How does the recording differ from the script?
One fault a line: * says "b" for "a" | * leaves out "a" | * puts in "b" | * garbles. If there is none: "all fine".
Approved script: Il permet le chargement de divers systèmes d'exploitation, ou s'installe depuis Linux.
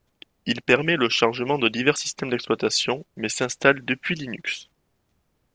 * says "mais" for "ou"